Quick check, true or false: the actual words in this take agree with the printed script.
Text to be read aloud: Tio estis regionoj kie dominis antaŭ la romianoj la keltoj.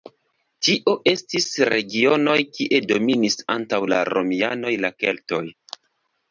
true